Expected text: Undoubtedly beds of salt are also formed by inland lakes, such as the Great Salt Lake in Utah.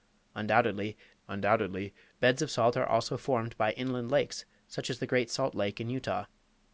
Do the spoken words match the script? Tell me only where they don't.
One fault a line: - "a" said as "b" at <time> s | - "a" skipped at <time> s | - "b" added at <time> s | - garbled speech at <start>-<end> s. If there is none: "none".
- "undoubtedly" added at 1.3 s